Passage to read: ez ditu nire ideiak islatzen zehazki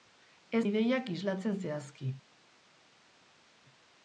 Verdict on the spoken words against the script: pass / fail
fail